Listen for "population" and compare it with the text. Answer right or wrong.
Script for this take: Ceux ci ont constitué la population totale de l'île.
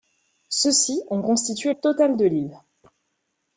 wrong